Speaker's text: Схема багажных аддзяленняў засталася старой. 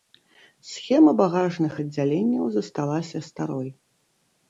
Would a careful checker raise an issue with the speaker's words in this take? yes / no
no